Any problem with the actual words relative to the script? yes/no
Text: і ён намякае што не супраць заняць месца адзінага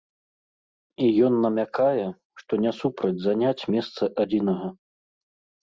no